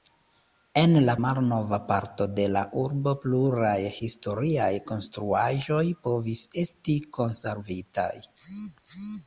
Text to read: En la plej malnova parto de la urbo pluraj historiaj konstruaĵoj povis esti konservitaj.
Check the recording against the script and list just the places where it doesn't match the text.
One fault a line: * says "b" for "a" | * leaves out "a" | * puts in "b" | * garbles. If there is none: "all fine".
* leaves out "plej"